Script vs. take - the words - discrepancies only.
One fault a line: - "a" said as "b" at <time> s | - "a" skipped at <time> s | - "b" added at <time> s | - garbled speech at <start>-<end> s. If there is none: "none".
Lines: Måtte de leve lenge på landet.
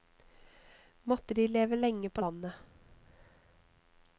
none